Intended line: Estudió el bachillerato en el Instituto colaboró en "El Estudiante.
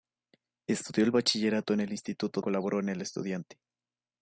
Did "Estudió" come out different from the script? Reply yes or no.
no